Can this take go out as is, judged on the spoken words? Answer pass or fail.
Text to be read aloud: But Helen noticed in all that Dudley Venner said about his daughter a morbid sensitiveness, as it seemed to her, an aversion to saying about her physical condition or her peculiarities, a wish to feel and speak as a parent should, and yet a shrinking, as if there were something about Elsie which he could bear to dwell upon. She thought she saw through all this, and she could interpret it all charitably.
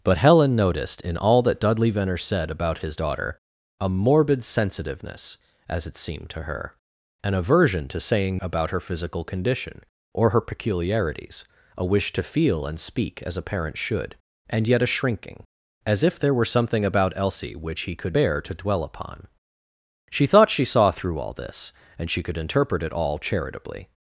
pass